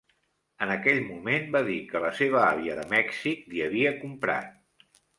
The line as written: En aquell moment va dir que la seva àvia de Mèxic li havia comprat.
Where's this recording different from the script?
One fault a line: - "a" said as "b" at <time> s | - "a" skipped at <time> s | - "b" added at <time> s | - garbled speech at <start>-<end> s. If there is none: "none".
none